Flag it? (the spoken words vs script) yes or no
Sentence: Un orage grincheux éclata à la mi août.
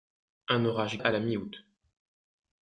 yes